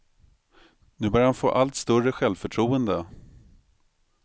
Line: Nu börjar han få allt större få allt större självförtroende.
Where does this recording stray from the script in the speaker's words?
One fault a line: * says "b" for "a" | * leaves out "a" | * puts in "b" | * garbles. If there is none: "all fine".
* leaves out "få allt större"